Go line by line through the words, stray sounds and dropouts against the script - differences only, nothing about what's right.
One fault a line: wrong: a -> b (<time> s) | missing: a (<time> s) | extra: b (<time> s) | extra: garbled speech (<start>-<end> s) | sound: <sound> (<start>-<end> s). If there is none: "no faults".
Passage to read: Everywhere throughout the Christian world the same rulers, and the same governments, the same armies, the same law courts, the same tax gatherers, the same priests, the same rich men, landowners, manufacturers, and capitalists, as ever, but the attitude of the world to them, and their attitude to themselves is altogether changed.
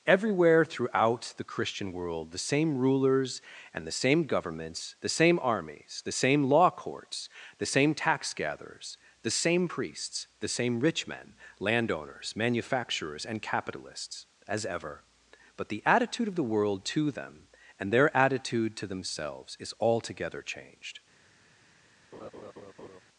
sound: laugh (22.1-23.0 s)